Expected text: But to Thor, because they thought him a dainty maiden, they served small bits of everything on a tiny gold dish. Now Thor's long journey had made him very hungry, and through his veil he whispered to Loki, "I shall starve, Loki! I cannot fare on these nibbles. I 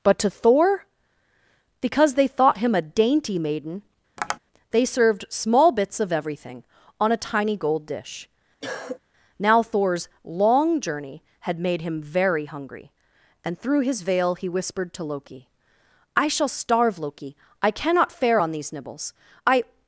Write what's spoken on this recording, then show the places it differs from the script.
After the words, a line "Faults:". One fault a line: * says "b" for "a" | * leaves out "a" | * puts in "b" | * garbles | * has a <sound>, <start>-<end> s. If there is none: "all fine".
But to Thor, because they thought him a dainty maiden, they served small bits of everything on a tiny gold dish. Now Thor's long journey had made him very hungry, and through his veil he whispered to Loki, "I shall starve, Loki! I cannot fare on these nibbles. I
Faults:
* has a tap, 4.2-4.4 s
* has a cough, 8.6-9.0 s